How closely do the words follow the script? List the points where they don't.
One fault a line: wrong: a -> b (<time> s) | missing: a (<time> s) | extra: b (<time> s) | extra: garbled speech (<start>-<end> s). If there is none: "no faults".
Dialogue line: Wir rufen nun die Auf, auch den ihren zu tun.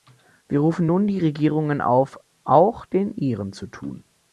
extra: Regierungen (1.2 s)